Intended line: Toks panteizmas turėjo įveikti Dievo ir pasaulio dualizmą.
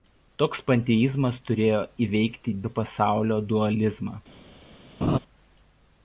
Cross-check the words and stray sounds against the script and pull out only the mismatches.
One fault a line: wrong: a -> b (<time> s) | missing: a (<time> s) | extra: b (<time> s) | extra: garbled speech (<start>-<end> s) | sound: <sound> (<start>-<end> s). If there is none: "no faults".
missing: Dievo (2.5 s)
sound: laugh (5.0-5.2 s)